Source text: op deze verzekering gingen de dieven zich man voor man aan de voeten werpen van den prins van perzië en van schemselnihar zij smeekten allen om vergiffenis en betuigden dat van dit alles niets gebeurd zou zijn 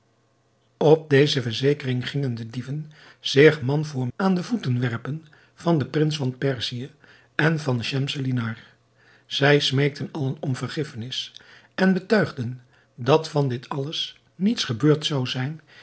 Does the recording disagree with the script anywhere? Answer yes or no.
yes